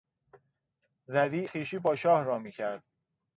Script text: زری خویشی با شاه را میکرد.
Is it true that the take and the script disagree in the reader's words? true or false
false